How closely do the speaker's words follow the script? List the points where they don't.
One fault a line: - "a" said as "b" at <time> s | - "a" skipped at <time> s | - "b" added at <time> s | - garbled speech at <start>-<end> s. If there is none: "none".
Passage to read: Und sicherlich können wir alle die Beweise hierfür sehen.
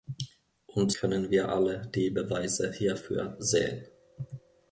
- "sicherlich" skipped at 0.9 s